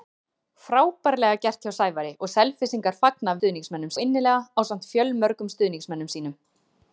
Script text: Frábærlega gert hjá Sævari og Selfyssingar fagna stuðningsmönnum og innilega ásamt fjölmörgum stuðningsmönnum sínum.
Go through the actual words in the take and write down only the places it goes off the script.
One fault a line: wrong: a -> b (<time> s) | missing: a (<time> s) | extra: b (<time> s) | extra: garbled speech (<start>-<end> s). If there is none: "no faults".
no faults